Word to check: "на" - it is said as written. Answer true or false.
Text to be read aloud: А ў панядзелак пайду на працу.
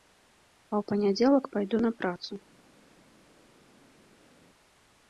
true